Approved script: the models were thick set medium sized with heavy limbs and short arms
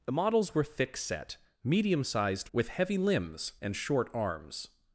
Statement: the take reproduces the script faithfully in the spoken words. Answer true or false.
true